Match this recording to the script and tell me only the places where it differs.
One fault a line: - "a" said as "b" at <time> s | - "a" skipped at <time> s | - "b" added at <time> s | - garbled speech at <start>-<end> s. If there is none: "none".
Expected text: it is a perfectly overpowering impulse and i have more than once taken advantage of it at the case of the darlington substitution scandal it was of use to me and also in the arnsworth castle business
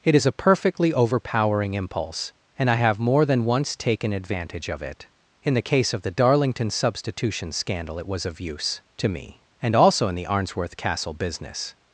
- "at" said as "in" at 5.4 s